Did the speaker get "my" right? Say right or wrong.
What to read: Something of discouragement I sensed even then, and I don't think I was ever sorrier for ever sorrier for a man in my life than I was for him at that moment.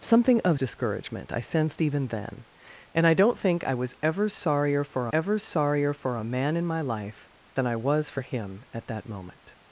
right